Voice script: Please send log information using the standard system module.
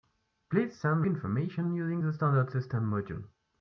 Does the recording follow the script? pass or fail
fail